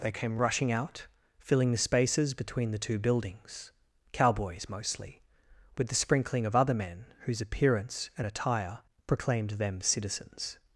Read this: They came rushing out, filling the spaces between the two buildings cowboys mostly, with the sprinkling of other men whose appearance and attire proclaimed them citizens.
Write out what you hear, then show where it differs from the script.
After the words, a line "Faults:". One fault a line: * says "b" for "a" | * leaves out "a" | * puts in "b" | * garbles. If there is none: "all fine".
They came rushing out, filling the spaces between the two buildings cowboys mostly, with the sprinkling of other men whose appearance and attire proclaimed them citizens.
Faults:
all fine